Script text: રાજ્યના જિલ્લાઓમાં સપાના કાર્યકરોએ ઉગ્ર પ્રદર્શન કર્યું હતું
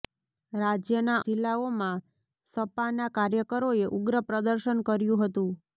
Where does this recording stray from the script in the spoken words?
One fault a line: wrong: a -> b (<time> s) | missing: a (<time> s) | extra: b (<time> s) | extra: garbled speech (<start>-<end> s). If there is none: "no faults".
no faults